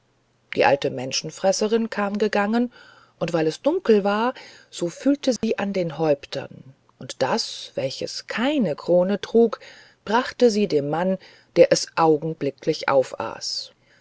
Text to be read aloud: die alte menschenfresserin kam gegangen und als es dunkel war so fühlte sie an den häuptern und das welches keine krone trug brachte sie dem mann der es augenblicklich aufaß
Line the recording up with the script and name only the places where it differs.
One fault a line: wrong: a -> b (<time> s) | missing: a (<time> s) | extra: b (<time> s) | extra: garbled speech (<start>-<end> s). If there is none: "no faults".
wrong: als -> weil (3.3 s)